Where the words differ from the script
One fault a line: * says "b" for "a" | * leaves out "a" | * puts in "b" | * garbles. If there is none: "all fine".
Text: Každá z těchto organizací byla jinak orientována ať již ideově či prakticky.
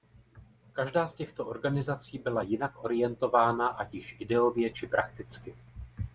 all fine